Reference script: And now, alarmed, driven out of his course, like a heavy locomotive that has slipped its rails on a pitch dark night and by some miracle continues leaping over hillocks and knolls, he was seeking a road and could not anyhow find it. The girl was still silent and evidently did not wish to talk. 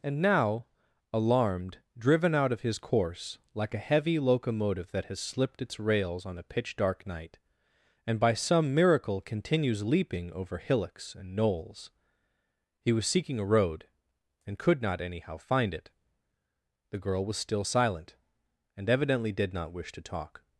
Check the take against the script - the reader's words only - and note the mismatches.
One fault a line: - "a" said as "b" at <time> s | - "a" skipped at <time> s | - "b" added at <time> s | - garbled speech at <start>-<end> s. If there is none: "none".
none